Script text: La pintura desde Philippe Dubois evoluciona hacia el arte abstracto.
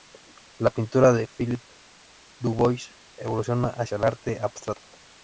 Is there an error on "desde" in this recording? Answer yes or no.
yes